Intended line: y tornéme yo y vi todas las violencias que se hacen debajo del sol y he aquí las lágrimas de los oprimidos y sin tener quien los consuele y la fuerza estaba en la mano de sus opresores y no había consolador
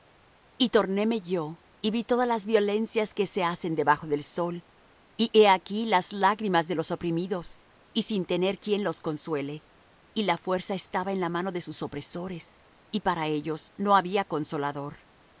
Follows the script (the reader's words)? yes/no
no